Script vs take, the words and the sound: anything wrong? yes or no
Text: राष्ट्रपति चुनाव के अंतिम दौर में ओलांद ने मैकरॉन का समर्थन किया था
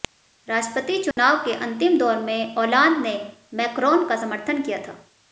yes